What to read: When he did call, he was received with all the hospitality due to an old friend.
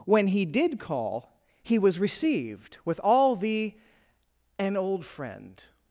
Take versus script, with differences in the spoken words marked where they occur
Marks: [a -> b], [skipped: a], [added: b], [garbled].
When he did call, he was received with all the [skipped: hospitality due to] an old friend.